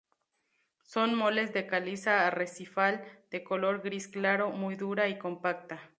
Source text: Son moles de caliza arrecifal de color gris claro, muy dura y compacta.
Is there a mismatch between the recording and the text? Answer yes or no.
no